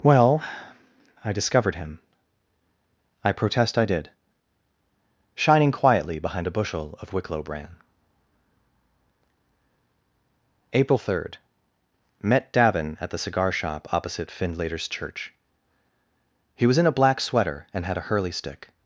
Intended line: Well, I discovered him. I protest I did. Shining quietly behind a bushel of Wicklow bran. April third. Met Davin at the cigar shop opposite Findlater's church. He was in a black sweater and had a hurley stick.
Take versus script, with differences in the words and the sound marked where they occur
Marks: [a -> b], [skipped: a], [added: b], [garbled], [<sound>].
Well, I discovered him. I protest I did. Shining quietly behind a bushel of Wicklow bran. April third. Met Davin at the cigar shop opposite Findlater's church. He was in a black sweater and had a hurley stick.